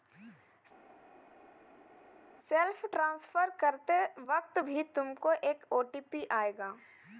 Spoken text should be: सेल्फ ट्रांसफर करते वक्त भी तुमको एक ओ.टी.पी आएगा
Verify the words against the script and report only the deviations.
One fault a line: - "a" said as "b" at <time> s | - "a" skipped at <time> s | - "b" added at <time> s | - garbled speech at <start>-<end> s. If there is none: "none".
none